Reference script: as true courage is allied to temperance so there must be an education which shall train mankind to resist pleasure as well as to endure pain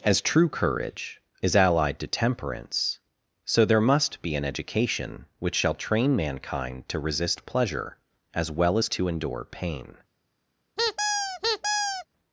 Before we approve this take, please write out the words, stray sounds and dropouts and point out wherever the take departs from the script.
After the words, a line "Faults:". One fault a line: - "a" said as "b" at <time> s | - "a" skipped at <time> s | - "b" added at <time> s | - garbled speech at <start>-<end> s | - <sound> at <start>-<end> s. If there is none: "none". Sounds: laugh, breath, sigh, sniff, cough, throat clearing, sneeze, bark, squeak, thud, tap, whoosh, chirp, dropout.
as true courage is allied to temperance so there must be an education which shall train mankind to resist pleasure as well as to endure pain
Faults:
- squeak at 10.8-12.1 s